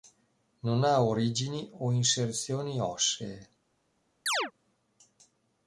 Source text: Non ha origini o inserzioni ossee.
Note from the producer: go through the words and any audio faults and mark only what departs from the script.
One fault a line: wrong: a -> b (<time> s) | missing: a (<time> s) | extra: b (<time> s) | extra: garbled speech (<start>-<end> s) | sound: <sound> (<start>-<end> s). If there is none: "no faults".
sound: chirp (4.3-4.5 s)